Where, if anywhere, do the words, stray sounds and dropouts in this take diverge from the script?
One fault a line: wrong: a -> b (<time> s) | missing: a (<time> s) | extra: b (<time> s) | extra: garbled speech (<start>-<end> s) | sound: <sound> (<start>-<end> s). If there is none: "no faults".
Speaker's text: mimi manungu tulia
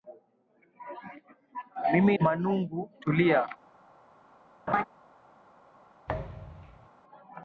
sound: laugh (4.7-4.8 s)
sound: thud (6.1-6.9 s)